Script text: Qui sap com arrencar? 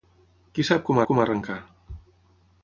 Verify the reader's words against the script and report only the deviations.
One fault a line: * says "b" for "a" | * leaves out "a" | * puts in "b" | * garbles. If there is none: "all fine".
* puts in "com"